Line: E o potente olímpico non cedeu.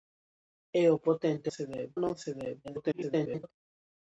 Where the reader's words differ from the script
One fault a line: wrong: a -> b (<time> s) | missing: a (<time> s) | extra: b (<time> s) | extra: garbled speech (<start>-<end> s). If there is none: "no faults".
wrong: olímpico -> cedeu (1.6 s)
extra: garbled speech (2.6-3.5 s)